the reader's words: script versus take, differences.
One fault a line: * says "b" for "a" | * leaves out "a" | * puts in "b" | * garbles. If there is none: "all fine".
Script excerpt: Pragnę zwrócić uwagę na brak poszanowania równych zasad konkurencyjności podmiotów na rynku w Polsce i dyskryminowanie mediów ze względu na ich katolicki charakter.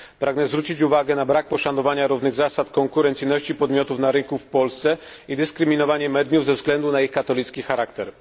all fine